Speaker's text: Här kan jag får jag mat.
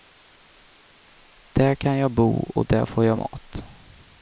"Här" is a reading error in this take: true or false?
true